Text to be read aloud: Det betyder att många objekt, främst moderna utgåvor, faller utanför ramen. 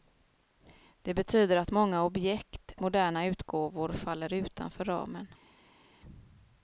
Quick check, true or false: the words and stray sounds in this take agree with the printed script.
false